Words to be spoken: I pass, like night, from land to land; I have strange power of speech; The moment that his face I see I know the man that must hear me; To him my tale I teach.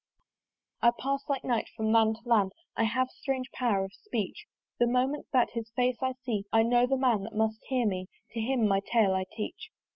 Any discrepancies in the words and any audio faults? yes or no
no